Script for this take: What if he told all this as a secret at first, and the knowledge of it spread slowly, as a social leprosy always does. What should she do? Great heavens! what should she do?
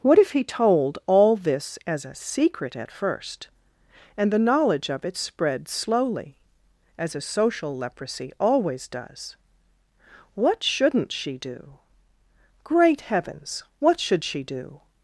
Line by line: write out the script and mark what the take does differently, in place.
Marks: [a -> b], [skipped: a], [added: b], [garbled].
What if he told all this as a secret at first, and the knowledge of it spread slowly, as a social leprosy always does. What [should -> shouldn't] she do? Great heavens! what should she do?